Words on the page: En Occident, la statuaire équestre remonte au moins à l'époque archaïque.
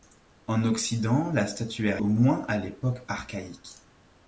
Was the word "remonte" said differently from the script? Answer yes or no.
yes